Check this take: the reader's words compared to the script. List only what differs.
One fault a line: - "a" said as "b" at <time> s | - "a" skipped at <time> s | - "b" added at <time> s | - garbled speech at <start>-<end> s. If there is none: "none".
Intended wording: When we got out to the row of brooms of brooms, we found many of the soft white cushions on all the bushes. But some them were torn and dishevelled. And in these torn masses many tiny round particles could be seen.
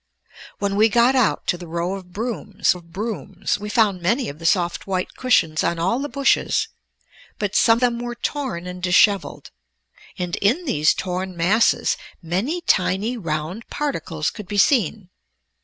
none